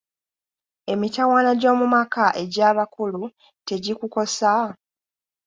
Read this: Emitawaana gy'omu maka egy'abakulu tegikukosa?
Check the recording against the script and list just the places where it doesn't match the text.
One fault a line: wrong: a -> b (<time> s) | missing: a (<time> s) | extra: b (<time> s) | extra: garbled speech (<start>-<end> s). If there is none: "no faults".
no faults